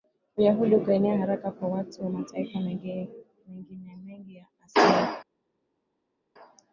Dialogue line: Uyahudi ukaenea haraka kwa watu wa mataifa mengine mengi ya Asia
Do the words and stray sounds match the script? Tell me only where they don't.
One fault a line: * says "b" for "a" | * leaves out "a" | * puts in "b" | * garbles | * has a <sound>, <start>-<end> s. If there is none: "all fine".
all fine